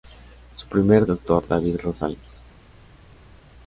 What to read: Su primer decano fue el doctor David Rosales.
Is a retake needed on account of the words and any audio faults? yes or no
yes